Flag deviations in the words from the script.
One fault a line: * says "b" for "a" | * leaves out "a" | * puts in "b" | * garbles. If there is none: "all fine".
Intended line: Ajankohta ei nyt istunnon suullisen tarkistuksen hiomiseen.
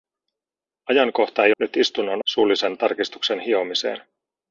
all fine